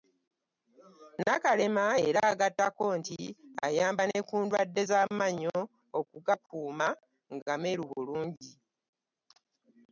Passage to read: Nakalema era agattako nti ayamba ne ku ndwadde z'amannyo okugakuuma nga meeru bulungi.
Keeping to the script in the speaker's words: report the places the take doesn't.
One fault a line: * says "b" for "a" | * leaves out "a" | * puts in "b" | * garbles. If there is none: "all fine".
all fine